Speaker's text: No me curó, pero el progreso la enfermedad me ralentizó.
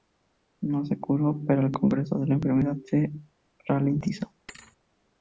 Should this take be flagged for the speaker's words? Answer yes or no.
yes